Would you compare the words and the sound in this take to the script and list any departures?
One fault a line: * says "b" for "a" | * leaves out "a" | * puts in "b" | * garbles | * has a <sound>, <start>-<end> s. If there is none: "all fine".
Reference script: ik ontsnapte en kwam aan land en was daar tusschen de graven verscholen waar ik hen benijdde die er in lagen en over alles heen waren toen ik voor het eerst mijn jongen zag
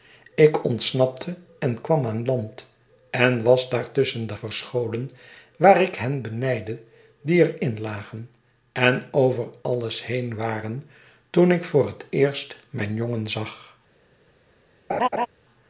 * leaves out "graven"
* has a laugh, 14.9-15.3 s